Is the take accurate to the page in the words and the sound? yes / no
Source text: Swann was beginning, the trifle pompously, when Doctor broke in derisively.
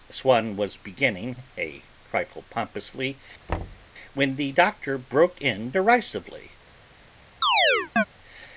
no